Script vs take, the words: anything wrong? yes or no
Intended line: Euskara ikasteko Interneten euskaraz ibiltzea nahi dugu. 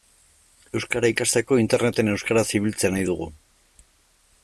no